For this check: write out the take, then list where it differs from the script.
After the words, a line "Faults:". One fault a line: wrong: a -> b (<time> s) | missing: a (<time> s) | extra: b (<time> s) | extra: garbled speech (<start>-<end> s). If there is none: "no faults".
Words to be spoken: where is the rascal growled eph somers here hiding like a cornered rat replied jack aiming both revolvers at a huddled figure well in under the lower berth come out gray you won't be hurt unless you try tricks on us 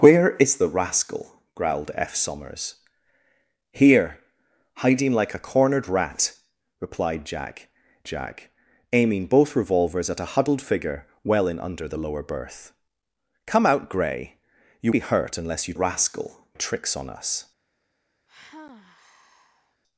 where is the rascal growled eph somers here hiding like a cornered rat replied jack jack aiming both revolvers at a huddled figure well in under the lower berth come out gray you be hurt unless you rascal tricks on us
Faults:
extra: jack (8.0 s)
missing: won't (14.9 s)
wrong: try -> rascal (15.7 s)